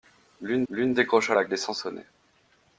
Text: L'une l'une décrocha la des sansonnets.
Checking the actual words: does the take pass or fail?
pass